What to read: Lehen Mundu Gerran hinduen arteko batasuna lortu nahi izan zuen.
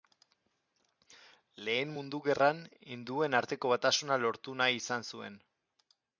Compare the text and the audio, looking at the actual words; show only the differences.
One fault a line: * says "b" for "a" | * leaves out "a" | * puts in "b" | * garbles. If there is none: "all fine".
all fine